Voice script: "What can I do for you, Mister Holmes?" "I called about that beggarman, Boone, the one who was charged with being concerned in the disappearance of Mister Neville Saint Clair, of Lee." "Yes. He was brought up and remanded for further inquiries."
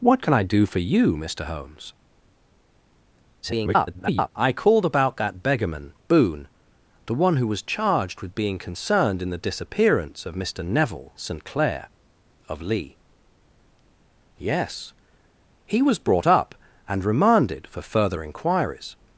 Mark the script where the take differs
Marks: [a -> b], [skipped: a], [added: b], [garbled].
"What can I do for you, Mister Holmes?" [garbled] "I called about that beggarman, Boone, the one who was charged with being concerned in the disappearance of Mister Neville Saint Clair, of Lee." "Yes. He was brought up and remanded for further inquiries."